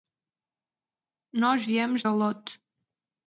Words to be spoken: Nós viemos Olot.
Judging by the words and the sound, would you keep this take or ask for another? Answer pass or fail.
pass